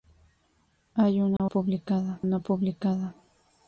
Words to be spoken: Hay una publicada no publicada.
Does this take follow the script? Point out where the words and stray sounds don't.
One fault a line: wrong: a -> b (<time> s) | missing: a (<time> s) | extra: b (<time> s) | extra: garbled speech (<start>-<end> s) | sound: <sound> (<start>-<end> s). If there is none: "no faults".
sound: dropout (1.4-1.4 s)